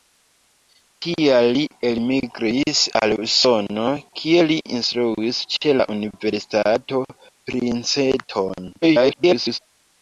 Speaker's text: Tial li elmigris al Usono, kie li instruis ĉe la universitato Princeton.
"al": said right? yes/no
yes